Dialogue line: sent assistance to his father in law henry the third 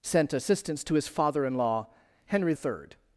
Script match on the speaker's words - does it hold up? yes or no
no